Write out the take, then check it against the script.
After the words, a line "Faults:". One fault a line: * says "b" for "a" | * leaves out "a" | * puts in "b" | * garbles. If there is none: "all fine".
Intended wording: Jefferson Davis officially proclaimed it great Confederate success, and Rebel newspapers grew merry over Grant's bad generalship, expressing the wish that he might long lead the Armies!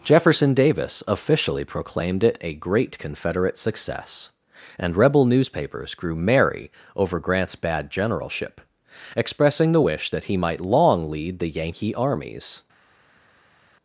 Jefferson Davis officially proclaimed it a great Confederate success, and Rebel newspapers grew merry over Grant's bad generalship, expressing the wish that he might long lead the Yankee armies!
Faults:
* puts in "a"
* puts in "Yankee"